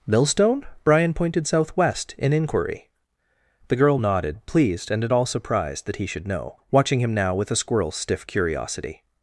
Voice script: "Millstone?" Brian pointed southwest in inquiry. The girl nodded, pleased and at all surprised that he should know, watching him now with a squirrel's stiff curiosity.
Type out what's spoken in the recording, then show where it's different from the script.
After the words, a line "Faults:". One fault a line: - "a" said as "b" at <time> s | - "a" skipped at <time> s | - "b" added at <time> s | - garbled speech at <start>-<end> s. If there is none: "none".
"Millstone?" Brian pointed southwest in inquiry. The girl nodded, pleased and at all surprised that he should know, watching him now with a squirrel's stiff curiosity.
Faults:
none